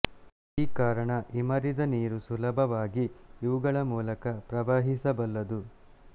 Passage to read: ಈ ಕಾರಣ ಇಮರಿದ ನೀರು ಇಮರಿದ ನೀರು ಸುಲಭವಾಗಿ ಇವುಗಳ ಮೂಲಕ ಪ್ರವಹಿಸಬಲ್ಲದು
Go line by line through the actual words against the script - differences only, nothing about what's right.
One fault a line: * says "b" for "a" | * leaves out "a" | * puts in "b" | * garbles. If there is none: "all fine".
* leaves out "ಇಮರಿದ ನೀರು"